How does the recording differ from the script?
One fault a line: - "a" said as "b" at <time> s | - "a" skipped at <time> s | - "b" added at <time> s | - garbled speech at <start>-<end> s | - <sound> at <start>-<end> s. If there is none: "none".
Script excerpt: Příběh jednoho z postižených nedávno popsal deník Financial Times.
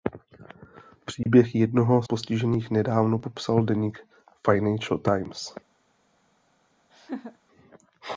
- dropout at 1.2-1.3 s
- "z" skipped at 2.0 s
- laugh at 6.9-7.4 s